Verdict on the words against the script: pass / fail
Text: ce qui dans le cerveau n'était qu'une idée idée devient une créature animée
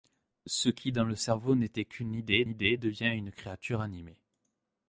pass